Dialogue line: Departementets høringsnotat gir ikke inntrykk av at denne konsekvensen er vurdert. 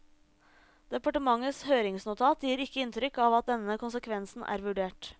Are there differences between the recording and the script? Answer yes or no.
no